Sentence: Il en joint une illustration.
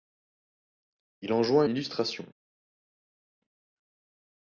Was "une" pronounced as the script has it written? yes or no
no